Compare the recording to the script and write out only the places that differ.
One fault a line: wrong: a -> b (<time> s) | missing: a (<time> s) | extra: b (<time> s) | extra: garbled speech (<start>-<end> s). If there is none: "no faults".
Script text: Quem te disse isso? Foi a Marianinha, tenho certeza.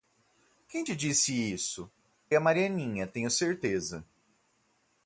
missing: Foi (1.9 s)